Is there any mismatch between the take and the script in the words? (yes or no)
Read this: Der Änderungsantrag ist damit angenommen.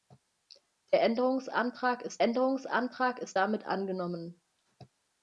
yes